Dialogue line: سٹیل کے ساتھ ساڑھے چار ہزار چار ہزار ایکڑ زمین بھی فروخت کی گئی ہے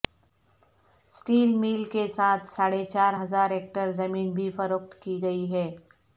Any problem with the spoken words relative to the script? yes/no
yes